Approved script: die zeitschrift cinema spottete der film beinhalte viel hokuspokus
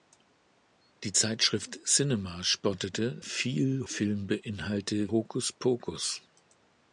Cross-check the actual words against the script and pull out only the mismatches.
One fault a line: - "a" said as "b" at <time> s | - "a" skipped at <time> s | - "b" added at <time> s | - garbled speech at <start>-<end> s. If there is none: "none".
- "der" said as "viel" at 3.2 s
- "viel" skipped at 5.1 s